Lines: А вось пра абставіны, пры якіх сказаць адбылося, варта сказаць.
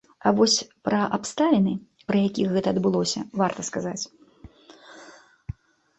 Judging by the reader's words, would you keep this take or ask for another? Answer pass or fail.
fail